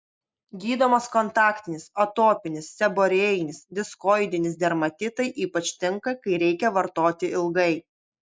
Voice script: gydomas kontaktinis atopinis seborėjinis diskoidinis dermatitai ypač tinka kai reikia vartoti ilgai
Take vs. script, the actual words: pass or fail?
pass